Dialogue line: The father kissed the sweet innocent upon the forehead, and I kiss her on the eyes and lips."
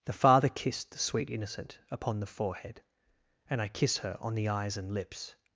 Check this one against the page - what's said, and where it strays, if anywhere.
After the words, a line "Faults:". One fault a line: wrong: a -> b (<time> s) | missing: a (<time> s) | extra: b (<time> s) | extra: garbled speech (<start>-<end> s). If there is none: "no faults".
The father kissed the sweet innocent upon the forehead, and I kiss her on the eyes and lips."
Faults:
no faults